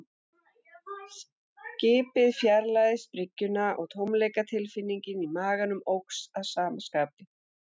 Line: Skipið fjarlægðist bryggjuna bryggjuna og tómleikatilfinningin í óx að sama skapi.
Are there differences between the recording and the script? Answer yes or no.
yes